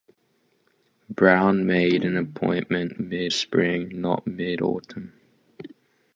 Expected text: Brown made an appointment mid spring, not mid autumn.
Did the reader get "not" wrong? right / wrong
right